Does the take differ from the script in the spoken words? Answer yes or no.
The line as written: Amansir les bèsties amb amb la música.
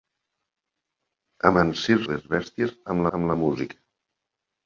no